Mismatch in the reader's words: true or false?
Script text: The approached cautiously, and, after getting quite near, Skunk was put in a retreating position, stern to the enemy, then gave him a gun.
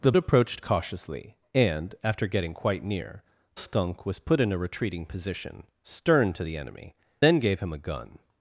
false